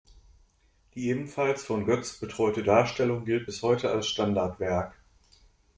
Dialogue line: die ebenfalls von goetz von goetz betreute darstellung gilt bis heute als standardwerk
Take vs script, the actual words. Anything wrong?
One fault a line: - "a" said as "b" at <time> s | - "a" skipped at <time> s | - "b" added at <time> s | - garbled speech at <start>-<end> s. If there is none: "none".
- "von goetz" skipped at 2.2 s